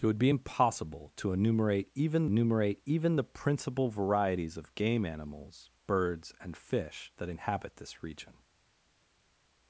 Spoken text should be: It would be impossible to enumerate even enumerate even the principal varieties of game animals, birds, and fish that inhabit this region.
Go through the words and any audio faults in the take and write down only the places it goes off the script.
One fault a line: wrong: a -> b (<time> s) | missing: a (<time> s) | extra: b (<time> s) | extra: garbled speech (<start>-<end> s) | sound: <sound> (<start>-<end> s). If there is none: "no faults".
no faults